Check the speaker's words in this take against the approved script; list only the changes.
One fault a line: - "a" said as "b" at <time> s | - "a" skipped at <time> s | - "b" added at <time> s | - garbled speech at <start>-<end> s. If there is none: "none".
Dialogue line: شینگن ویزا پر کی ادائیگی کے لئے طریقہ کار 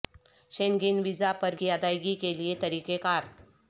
none